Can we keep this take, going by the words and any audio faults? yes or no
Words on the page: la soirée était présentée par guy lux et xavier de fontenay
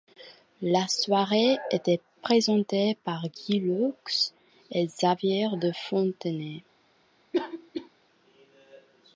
no